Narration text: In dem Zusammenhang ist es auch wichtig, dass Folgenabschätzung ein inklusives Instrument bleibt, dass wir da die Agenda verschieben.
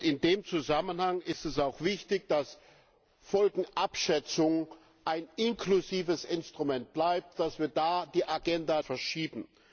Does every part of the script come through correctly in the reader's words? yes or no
yes